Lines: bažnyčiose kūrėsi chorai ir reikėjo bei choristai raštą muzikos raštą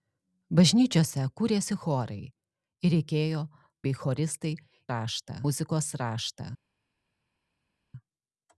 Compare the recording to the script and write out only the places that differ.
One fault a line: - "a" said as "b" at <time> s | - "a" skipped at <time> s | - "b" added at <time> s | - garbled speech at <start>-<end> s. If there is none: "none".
none